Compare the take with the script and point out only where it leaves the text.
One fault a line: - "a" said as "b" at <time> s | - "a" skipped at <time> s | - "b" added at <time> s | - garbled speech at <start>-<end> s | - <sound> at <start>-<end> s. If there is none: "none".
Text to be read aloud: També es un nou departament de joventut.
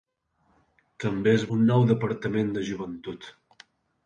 none